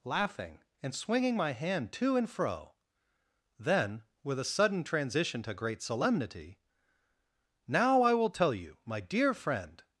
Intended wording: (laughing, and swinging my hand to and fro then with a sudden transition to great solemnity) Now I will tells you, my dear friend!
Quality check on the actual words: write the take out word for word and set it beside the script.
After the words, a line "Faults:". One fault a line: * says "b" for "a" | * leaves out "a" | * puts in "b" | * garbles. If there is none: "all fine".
(laughing, and swinging my hand to and fro then with a sudden transition to great solemnity) Now I will tell you, my dear friend!
Faults:
* says "tell" for "tells"